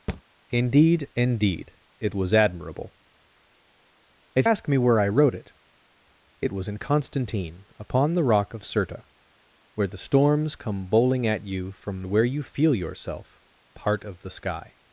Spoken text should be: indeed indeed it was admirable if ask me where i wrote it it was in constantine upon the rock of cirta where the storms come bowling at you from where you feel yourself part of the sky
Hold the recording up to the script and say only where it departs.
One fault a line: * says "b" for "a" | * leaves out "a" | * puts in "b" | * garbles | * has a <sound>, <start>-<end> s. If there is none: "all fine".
* has a thud, 0.1-0.2 s